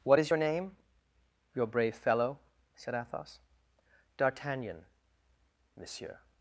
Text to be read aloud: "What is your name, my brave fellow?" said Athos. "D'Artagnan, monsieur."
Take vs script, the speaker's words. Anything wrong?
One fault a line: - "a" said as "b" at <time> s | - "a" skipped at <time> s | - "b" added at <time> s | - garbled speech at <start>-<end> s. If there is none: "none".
- "my" said as "your" at 1.5 s